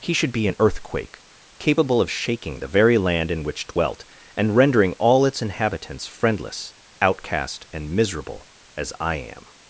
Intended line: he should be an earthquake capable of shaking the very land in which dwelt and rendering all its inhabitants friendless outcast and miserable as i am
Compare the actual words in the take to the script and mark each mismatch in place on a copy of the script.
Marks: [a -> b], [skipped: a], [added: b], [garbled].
he should be an earthquake capable of shaking the very land in which dwelt and rendering all its inhabitants friendless outcast and miserable as i am